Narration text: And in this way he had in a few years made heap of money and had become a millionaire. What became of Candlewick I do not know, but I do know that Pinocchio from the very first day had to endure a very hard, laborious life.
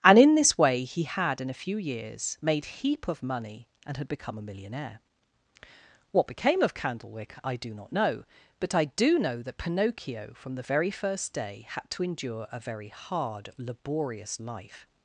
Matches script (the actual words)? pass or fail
pass